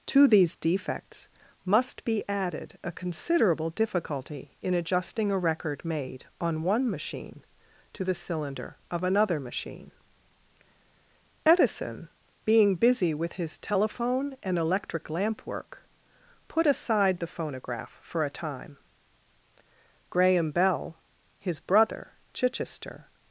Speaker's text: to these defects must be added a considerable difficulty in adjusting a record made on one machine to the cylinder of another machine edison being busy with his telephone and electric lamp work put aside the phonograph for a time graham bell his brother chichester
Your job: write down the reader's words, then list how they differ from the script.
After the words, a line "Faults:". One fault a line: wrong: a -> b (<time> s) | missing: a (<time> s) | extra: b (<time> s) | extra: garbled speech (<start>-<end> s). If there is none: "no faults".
to these defects must be added a considerable difficulty in adjusting a record made on one machine to the cylinder of another machine edison being busy with his telephone and electric lamp work put aside the phonograph for a time graham bell his brother chichester
Faults:
no faults